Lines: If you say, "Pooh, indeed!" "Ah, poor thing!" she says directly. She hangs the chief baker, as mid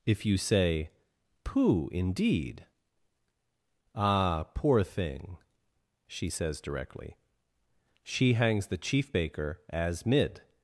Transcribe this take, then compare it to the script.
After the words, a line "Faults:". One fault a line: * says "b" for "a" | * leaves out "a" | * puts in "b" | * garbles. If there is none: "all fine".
If you say, "Pooh, indeed!" "Ah, poor thing!" she says directly. She hangs the chief baker, as mid
Faults:
all fine